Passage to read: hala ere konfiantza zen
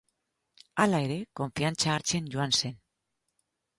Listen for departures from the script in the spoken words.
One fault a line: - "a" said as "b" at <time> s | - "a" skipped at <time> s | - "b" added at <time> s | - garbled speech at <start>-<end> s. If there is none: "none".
- "hartzen joan" added at 2.0 s